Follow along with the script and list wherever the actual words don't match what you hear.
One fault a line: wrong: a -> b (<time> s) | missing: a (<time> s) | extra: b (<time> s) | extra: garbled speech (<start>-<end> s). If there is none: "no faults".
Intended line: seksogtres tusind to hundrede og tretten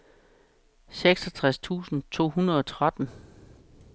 no faults